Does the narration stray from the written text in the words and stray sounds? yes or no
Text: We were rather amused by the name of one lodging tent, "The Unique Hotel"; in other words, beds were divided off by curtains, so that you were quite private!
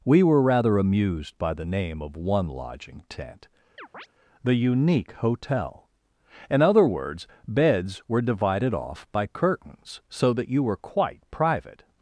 yes